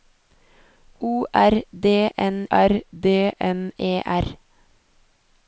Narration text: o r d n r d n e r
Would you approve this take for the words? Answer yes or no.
yes